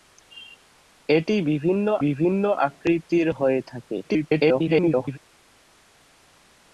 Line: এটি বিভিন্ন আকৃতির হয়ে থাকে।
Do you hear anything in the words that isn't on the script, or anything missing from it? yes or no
yes